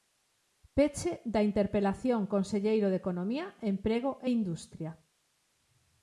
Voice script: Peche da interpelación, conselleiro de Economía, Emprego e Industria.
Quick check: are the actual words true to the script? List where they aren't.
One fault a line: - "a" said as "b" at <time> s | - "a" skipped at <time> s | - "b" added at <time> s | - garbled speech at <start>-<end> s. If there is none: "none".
none